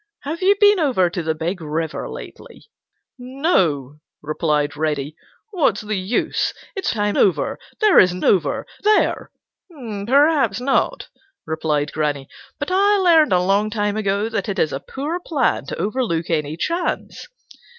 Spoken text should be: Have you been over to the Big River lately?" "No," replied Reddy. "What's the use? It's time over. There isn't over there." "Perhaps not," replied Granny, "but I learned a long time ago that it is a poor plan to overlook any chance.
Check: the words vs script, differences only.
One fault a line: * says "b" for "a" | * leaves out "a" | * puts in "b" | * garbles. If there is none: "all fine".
all fine